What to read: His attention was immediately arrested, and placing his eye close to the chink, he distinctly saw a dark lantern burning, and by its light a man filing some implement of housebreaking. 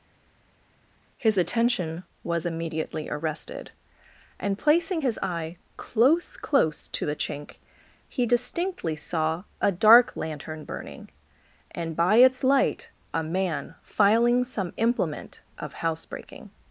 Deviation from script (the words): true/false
true